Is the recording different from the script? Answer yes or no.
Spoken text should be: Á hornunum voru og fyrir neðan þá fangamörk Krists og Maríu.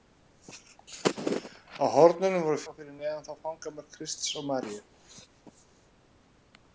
no